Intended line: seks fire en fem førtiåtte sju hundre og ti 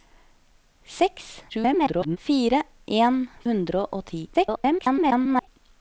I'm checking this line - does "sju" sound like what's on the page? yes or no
no